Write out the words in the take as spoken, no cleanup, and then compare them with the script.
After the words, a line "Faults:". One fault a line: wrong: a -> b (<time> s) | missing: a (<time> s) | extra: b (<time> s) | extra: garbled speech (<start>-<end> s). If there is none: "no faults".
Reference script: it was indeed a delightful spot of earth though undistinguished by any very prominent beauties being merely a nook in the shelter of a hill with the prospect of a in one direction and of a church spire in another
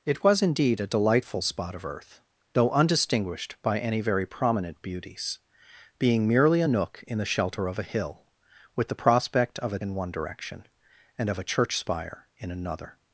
it was indeed a delightful spot of earth though undistinguished by any very prominent beauties being merely a nook in the shelter of a hill with the prospect of a in one direction and of a church spire in another
Faults:
no faults